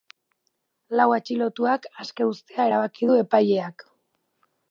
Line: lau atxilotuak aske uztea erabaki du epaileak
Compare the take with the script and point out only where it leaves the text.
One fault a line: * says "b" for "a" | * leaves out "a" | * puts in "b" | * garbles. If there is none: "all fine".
all fine